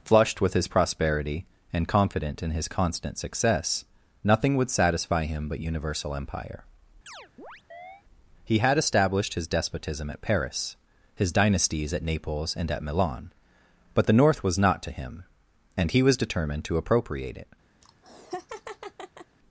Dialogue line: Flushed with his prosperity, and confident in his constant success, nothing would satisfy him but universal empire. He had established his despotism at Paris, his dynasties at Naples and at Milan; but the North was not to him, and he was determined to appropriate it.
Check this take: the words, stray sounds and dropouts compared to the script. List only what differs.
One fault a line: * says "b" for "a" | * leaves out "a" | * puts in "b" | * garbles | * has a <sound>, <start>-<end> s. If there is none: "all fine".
* has a chirp, 7.1-8.0 s
* has a laugh, 17.8-19.4 s